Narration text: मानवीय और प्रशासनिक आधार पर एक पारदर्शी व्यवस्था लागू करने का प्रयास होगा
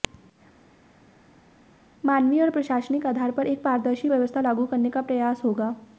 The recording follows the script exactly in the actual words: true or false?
true